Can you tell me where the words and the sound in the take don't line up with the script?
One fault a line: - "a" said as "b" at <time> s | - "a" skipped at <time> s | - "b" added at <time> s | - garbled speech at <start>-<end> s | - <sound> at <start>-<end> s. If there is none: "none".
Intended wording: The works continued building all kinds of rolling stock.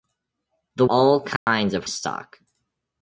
- "works continued building" skipped at 0.9 s
- dropout at 1.4-1.5 s
- "rolling" skipped at 1.9 s